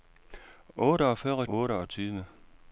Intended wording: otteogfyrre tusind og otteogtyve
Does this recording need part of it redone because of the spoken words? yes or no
yes